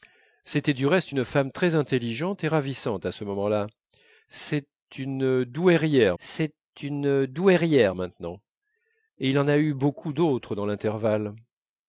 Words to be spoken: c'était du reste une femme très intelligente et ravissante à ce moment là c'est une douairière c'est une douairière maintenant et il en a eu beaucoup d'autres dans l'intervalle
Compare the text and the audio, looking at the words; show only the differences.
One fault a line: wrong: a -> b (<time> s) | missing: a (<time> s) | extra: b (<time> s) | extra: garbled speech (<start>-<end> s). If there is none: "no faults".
no faults